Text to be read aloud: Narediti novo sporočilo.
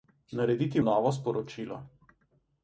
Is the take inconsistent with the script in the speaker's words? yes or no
no